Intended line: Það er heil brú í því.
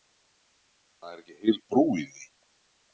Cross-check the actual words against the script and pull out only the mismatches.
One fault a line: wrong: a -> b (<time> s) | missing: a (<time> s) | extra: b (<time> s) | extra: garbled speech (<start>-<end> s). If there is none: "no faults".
extra: ekki (1.2 s)